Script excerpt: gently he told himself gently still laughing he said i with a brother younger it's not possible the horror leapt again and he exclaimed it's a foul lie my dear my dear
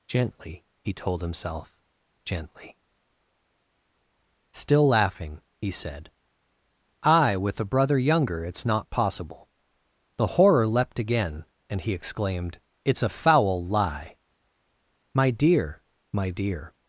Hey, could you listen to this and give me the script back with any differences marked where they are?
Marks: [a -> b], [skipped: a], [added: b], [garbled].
gently he told himself gently still laughing he said i with a brother younger it's not possible the horror leapt again and he exclaimed it's a foul lie my dear my dear